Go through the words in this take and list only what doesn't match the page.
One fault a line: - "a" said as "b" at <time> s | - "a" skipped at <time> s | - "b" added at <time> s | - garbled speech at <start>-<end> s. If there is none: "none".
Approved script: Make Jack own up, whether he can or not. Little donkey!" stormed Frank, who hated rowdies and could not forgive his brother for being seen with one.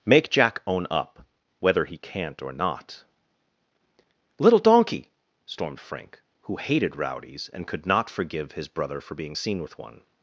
- "can" said as "can't" at 2.0 s